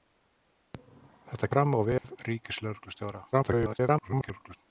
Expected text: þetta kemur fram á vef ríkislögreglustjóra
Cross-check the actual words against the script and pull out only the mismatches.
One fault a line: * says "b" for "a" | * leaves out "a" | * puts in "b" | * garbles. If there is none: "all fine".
* leaves out "kemur"
* garbles